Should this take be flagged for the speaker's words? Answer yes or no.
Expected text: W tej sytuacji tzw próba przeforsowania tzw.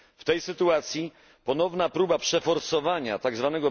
yes